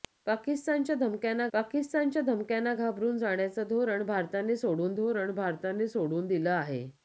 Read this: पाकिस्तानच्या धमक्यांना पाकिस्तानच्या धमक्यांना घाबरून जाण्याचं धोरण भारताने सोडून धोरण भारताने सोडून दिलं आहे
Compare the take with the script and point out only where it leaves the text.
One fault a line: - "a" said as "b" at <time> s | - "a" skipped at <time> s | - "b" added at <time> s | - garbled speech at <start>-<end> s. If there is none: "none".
none